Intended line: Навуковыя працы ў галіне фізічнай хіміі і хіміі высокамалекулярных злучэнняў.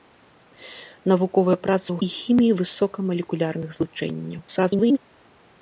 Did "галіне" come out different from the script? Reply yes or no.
yes